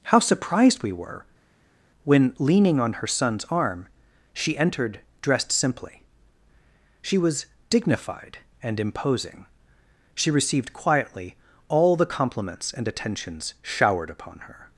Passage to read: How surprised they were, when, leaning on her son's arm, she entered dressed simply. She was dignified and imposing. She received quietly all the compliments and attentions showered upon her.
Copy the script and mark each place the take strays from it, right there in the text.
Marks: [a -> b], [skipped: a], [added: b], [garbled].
How surprised [they -> we] were, when, leaning on her son's arm, she entered dressed simply. She was dignified and imposing. She received quietly all the compliments and attentions showered upon her.